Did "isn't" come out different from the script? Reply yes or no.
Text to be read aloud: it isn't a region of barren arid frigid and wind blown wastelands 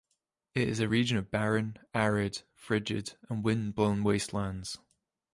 yes